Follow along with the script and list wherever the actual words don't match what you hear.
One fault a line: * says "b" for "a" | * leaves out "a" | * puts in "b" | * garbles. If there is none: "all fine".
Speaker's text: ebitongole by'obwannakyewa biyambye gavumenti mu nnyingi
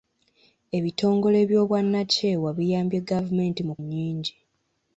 all fine